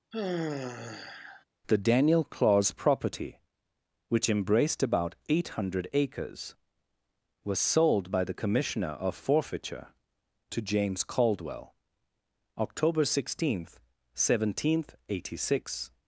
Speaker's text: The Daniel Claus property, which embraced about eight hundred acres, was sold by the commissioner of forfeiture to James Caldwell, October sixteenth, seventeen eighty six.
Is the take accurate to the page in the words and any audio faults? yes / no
no